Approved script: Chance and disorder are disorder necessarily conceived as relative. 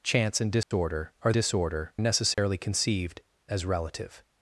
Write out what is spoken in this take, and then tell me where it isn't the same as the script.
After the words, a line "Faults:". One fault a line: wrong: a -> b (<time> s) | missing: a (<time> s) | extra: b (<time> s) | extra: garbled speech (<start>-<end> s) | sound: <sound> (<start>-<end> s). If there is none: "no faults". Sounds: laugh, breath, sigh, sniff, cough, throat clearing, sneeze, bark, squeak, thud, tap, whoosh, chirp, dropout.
Chance and disorder are disorder necessarily conceived as relative.
Faults:
sound: dropout (0.6-0.7 s)
sound: dropout (2.3-2.4 s)